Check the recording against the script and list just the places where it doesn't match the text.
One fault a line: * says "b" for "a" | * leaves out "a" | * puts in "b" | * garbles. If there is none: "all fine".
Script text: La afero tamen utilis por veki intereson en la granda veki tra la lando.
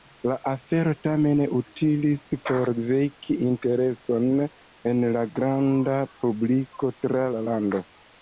* says "publiko" for "veki"